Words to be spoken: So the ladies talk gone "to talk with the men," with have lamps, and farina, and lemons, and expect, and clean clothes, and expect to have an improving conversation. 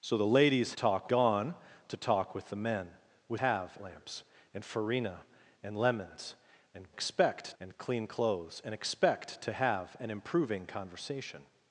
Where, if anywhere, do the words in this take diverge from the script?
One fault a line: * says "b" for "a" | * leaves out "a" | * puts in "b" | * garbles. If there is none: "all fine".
all fine